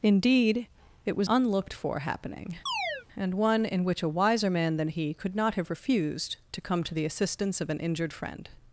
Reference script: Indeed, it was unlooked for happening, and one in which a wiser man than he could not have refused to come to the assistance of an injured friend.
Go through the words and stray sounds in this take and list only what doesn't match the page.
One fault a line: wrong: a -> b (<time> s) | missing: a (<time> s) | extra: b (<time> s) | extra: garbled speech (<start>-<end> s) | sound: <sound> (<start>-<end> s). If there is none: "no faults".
sound: chirp (2.7-3.1 s)